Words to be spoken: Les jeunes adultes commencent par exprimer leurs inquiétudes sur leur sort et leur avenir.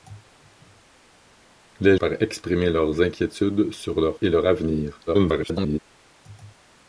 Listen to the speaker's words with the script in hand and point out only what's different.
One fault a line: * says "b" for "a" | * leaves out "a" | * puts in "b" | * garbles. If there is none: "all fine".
* leaves out "jeunes adultes commencent"
* leaves out "sort"
* garbles